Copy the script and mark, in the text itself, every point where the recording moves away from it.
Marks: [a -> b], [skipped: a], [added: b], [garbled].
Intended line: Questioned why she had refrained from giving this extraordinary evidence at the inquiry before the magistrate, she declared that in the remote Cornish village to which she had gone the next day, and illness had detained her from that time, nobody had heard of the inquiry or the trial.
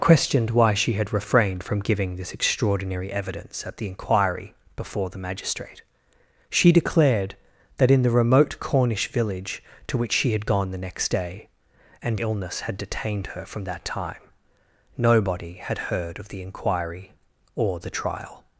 Questioned why she had refrained from giving this extraordinary evidence at the inquiry before the magistrate, she declared that in the remote Cornish village to which she had gone the next day, and illness had detained her from that time, nobody had heard of the inquiry or the trial.